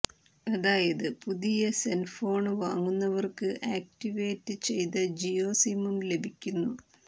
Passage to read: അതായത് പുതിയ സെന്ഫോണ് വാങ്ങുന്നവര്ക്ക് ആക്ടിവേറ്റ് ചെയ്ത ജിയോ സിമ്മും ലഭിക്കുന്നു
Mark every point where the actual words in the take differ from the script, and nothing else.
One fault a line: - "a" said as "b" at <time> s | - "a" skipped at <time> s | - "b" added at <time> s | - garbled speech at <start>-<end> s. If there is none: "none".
none